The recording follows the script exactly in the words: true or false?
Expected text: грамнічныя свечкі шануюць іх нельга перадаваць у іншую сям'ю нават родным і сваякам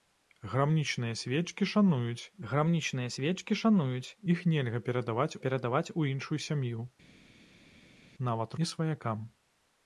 false